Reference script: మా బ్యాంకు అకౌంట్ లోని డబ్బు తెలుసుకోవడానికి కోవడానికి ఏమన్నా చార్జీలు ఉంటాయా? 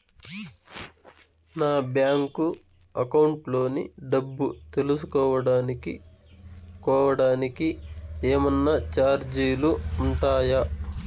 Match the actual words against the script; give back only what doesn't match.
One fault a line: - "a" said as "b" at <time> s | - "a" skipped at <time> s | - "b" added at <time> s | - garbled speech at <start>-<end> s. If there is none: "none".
- "మా" said as "నా" at 1.6 s